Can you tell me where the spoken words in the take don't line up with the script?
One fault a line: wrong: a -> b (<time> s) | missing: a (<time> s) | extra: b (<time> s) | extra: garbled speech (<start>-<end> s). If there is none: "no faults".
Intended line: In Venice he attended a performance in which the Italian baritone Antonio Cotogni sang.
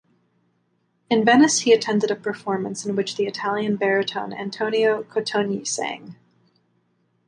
no faults